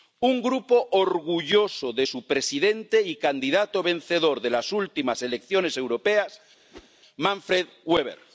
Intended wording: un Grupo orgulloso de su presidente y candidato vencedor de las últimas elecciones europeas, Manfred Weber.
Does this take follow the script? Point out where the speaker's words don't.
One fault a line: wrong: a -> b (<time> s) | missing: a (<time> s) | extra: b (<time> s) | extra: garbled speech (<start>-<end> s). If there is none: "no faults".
no faults